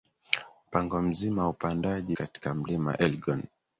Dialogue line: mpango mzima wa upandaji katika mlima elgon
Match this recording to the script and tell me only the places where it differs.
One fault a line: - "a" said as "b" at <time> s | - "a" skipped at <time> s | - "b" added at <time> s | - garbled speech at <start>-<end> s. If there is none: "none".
none